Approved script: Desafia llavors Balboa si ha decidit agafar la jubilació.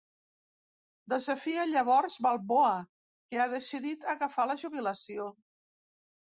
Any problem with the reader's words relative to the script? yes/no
yes